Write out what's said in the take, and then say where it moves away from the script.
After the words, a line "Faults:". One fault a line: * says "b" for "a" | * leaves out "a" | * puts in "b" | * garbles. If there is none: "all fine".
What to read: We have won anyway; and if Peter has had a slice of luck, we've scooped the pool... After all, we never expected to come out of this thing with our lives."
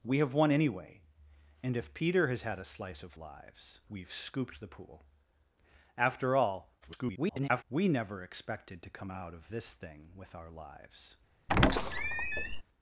We have won anyway; and if Peter has had a slice of lives, we've scooped the pool... After all, [garbled] we never expected to come out of this thing with our lives."
Faults:
* says "lives" for "luck"
* garbles